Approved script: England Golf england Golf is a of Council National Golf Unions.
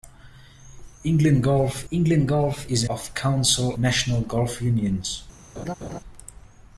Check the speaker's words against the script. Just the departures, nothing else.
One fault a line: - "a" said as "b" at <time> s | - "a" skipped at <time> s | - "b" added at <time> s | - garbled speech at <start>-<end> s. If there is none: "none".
none